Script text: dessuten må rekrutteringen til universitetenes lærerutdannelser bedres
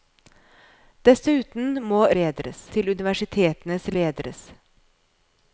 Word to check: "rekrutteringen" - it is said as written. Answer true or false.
false